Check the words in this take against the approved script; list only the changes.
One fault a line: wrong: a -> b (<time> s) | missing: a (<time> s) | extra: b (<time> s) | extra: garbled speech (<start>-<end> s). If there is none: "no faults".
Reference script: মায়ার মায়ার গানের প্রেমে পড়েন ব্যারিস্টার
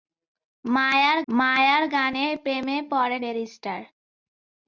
no faults